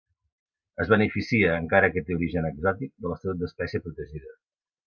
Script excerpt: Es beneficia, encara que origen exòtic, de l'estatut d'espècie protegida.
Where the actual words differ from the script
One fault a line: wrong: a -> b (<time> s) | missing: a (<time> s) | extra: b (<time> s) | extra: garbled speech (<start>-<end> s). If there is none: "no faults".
extra: té (2.1 s)